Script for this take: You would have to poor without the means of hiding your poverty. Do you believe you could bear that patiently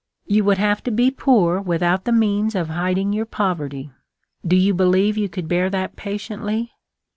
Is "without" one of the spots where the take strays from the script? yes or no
no